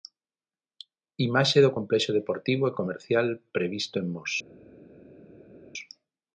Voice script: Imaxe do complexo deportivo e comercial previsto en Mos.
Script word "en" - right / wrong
right